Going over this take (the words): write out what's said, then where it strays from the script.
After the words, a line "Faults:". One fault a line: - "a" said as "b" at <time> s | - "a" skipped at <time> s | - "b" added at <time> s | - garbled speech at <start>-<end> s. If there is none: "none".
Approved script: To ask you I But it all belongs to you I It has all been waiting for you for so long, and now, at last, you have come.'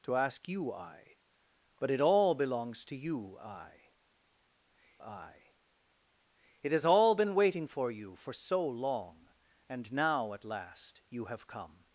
To ask you I But it all belongs to you I I It has all been waiting for you for so long, and now, at last, you have come.'
Faults:
- "I" added at 5.0 s